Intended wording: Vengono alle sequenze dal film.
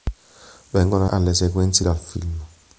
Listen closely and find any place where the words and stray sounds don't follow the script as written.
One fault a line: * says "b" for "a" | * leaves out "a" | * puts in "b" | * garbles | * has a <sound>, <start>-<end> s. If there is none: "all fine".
all fine